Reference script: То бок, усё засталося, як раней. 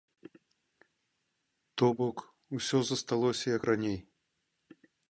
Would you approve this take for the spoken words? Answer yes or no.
yes